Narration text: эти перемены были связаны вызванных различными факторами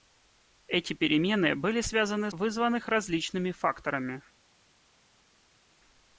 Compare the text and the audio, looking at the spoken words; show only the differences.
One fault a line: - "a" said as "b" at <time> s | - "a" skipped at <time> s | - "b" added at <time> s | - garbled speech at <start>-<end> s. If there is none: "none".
none